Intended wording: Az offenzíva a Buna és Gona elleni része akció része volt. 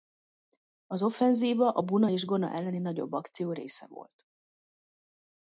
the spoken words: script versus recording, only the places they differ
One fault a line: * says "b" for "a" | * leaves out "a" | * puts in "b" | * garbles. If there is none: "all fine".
* says "nagyobb" for "része"